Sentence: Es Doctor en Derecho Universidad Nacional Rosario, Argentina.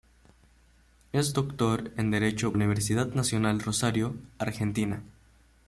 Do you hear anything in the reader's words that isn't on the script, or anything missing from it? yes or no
no